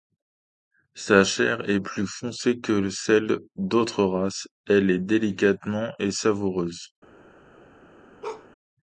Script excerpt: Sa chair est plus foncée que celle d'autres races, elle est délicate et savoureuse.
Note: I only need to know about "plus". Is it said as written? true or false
true